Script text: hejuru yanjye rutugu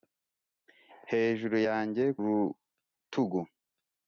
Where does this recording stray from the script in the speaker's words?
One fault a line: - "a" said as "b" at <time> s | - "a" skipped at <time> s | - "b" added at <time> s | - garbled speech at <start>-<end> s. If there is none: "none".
none